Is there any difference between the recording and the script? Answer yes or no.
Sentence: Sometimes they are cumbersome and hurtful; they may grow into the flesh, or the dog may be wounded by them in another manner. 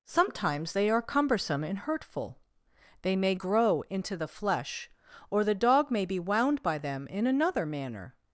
yes